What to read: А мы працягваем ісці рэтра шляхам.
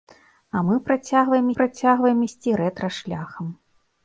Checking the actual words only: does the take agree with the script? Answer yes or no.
no